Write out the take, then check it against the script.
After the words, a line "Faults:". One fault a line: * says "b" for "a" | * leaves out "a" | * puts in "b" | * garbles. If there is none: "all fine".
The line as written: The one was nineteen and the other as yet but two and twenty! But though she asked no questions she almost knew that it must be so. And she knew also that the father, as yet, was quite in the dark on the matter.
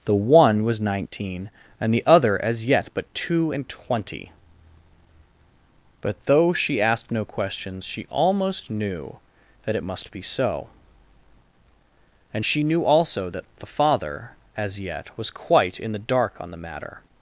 The one was nineteen and the other as yet but two and twenty! But though she asked no questions she almost knew that it must be so. And she knew also that the father, as yet, was quite in the dark on the matter.
Faults:
all fine